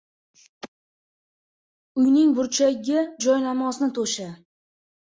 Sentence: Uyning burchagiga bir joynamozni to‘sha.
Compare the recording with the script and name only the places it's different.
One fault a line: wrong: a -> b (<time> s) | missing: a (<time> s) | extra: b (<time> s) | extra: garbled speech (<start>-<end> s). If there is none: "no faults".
missing: bir (3.0 s)